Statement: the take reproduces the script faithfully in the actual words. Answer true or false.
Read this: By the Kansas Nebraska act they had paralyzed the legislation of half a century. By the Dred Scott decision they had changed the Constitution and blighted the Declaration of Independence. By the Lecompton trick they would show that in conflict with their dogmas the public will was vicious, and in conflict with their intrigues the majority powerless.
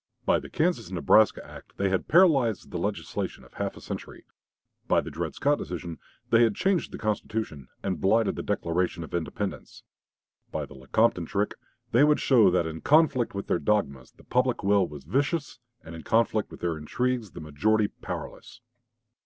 true